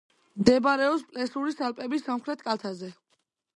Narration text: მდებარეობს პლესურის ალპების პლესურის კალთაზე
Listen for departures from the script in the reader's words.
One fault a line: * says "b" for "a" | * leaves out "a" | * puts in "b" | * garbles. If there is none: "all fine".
* says "სამხრეთ" for "პლესურის"